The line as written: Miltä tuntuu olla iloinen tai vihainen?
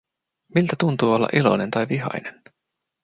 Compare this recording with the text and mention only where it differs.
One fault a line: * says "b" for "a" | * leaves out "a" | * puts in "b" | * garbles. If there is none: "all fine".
all fine